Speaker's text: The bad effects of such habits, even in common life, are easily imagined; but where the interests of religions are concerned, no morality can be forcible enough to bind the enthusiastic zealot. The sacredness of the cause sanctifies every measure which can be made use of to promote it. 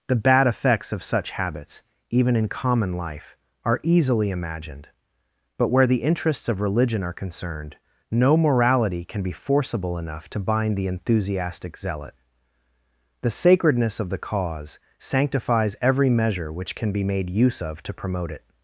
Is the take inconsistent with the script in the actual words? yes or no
yes